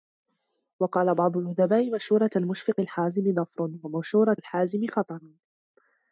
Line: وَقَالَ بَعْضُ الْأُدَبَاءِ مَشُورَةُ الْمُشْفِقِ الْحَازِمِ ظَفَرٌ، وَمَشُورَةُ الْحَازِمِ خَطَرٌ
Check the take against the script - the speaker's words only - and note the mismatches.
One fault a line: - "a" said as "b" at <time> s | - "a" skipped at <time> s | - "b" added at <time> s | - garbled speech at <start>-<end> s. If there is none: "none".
none